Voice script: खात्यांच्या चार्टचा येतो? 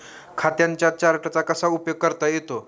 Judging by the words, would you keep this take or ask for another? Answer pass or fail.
fail